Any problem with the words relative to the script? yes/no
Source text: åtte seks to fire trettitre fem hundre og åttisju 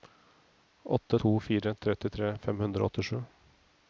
yes